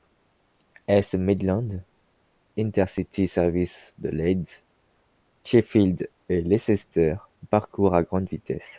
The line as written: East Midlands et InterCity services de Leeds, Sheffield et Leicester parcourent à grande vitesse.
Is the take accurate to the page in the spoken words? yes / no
no